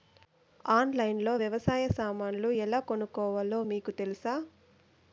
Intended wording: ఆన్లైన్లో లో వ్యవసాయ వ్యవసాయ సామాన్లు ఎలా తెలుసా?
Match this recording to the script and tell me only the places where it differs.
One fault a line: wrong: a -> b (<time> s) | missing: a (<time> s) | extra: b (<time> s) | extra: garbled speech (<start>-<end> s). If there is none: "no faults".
missing: వ్యవసాయ (1.9 s)
extra: కొనుక్కోవాలో మీకు (2.9 s)